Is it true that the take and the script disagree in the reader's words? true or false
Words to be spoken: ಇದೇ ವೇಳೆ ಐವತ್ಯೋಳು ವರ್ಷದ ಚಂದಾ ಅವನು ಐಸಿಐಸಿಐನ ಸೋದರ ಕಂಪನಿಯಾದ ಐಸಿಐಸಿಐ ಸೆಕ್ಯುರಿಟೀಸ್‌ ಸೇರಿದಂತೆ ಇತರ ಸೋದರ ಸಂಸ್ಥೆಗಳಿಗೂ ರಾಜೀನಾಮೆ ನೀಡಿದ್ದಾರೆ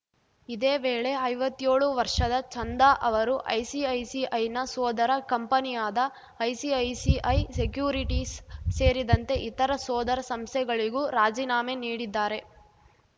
true